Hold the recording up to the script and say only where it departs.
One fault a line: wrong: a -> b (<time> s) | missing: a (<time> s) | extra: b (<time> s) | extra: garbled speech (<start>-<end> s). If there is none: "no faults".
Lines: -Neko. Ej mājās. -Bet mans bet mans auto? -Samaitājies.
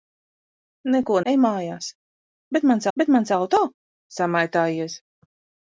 no faults